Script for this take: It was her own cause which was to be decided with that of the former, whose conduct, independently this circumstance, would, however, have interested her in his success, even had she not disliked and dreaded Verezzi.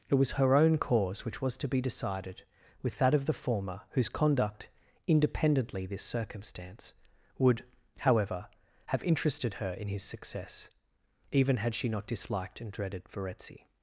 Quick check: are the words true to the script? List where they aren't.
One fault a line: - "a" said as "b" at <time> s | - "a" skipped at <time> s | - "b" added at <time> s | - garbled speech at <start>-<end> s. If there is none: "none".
none